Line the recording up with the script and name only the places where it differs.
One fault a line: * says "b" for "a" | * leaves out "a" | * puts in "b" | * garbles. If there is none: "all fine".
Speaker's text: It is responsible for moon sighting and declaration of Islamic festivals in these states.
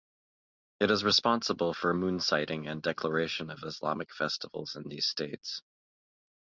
all fine